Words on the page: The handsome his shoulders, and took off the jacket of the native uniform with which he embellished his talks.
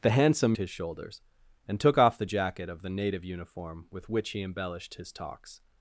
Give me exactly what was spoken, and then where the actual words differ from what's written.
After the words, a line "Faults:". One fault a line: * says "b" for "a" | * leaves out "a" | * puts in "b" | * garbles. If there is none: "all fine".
The handsome his shoulders, and took off the jacket of the native uniform with which he embellished his talks.
Faults:
all fine